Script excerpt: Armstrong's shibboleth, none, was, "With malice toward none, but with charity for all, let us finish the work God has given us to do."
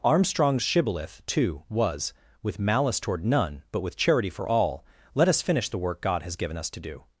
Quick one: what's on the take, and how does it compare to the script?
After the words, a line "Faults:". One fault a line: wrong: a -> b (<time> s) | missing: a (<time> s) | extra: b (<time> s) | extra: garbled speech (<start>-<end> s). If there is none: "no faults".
Armstrong's shibboleth, too, was, "With malice toward none, but with charity for all, let us finish the work God has given us to do."
Faults:
wrong: none -> too (1.3 s)